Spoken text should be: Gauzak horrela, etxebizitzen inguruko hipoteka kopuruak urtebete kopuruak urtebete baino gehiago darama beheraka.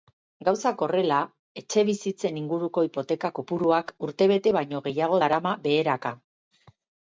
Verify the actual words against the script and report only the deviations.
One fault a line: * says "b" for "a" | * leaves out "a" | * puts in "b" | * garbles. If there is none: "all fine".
* leaves out "kopuruak urtebete"